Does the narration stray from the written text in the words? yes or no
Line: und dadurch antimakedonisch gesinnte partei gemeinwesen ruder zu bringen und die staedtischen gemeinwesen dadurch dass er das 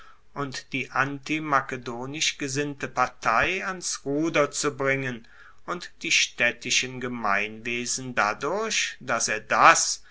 yes